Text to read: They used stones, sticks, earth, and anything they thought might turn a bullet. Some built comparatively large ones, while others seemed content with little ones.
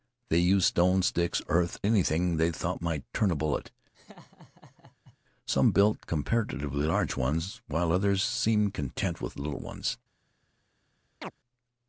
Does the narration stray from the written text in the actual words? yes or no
yes